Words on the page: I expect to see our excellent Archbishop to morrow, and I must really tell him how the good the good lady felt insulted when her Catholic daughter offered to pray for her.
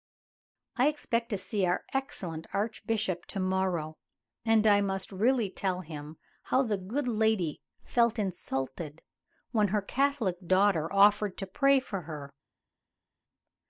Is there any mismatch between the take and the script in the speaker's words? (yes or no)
yes